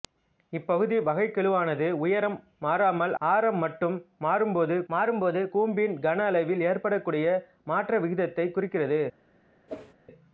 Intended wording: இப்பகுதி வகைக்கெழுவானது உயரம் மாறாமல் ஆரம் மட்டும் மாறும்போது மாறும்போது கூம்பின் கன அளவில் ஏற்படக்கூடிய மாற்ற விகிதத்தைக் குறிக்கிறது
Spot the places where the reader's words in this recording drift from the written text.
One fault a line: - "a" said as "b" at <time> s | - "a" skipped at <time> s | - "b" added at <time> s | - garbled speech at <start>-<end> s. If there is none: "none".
none